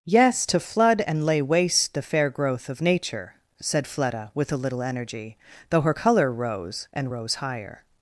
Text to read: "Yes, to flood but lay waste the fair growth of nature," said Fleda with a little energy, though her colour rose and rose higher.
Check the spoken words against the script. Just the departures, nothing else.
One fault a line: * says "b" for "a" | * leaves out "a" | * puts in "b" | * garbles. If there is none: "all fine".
* says "and" for "but"